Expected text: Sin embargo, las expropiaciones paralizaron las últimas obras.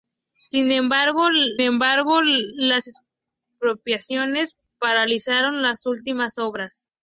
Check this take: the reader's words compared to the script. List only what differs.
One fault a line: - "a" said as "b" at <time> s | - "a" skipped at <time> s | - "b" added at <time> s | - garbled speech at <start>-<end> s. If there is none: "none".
- "embargo" added at 1.6 s